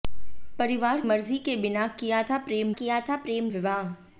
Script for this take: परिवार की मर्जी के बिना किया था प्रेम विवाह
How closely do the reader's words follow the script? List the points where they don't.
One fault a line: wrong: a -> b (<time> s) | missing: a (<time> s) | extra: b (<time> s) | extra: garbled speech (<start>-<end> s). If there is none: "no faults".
missing: की (1.0 s)
extra: किया था प्रेम (2.8 s)